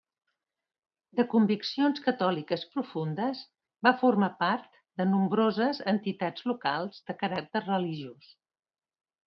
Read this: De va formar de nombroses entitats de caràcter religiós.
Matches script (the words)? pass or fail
fail